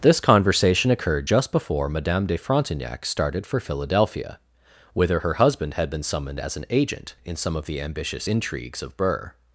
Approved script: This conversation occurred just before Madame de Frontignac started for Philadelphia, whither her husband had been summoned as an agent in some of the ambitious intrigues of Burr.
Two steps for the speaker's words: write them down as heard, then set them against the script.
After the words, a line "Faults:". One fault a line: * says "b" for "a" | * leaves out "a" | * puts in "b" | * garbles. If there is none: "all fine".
This conversation occurred just before Madame de Frontignac started for Philadelphia, whither her husband had been summoned as an agent in some of the ambitious intrigues of Burr.
Faults:
all fine